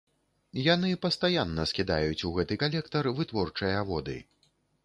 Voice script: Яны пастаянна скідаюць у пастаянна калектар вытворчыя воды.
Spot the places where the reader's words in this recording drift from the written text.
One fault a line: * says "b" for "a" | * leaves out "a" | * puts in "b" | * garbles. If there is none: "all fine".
* says "гэты" for "пастаянна"